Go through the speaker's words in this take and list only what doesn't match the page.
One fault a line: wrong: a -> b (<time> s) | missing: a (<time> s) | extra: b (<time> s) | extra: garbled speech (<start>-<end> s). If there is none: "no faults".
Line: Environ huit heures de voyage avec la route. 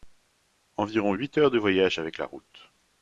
no faults